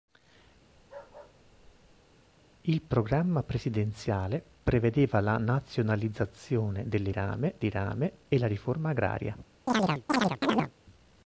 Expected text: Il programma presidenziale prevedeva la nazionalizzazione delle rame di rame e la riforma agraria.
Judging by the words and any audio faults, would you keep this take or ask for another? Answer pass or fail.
fail